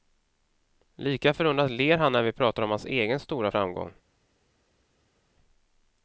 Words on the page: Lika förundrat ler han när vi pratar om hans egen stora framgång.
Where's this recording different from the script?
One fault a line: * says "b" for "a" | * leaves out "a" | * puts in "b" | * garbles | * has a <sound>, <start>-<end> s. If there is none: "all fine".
all fine